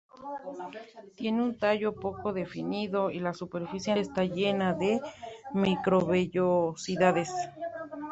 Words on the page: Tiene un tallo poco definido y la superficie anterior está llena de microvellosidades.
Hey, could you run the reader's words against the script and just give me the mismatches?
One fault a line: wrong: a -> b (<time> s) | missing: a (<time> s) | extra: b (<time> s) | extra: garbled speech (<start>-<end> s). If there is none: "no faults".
missing: anterior (3.9 s)